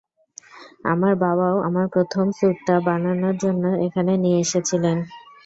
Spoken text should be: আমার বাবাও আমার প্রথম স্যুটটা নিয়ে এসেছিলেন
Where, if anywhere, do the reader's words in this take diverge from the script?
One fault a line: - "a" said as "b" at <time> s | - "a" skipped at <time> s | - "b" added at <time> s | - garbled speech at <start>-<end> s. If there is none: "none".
- "বানানোর জন্য এখানে" added at 2.9 s